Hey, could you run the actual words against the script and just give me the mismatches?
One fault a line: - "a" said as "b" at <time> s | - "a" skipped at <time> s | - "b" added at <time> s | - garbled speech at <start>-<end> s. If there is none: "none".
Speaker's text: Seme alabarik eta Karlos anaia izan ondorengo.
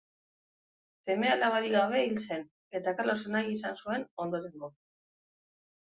- "gabe hil zen" added at 1.8 s
- "zuen" added at 3.9 s